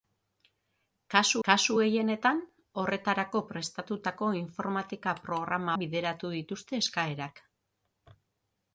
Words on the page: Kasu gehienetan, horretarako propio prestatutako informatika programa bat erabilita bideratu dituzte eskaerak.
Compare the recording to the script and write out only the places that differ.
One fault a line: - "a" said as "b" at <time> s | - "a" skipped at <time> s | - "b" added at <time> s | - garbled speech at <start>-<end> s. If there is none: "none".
- "kasu" added at 1.5 s
- "propio" skipped at 3.4 s
- "bat erabilita" skipped at 5.8 s